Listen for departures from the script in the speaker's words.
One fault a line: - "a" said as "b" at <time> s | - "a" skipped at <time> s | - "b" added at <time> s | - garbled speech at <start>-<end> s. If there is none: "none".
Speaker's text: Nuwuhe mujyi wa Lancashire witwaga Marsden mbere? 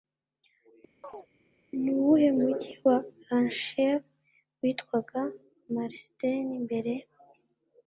none